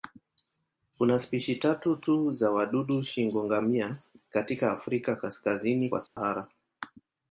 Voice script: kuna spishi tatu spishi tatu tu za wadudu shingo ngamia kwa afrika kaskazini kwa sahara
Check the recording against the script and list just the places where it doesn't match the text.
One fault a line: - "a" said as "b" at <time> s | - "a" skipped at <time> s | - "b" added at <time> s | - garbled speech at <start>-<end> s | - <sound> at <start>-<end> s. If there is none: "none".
- "spishi tatu" skipped at 1.9 s
- "kwa" said as "katika" at 4.3 s
- dropout at 6.1-6.2 s